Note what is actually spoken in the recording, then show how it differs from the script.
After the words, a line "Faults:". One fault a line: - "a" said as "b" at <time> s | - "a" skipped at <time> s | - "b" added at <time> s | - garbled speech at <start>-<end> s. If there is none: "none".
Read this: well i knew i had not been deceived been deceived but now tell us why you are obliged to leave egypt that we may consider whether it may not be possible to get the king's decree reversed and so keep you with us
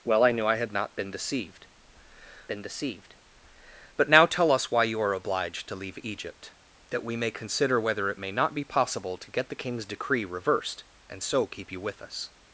well i knew i had not been deceived been deceived but now tell us why you are obliged to leave egypt that we may consider whether it may not be possible to get the king's decree reversed and so keep you with us
Faults:
none